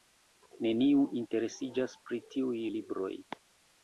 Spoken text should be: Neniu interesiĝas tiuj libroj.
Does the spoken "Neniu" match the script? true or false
true